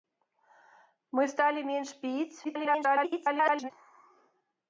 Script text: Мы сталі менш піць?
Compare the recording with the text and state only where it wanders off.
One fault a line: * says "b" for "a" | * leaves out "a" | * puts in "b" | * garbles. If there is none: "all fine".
* garbles